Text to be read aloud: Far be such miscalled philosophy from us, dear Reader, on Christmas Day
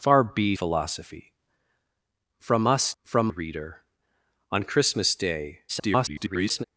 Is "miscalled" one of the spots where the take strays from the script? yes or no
yes